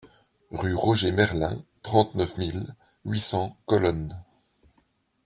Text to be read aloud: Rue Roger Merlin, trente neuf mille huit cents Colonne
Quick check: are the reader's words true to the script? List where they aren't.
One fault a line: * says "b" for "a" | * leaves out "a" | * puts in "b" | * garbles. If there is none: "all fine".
all fine